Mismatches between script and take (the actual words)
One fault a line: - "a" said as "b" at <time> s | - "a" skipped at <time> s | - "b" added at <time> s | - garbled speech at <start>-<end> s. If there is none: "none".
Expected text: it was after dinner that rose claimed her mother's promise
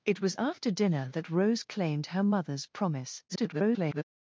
- garbled speech at 3.3-4.0 s